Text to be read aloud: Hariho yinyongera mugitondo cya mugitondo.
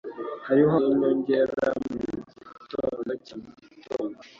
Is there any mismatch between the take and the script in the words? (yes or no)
no